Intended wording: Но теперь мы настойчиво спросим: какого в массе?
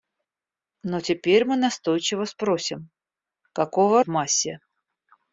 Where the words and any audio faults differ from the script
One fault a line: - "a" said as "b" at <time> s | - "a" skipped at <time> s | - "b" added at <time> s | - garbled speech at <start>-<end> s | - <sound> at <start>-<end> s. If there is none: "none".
none